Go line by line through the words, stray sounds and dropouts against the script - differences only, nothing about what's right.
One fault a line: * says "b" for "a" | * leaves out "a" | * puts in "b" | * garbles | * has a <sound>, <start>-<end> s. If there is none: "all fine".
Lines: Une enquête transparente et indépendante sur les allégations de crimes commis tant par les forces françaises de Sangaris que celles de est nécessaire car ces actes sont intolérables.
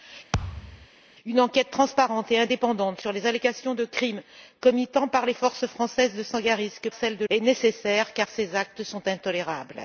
* has a thud, 0.3-0.9 s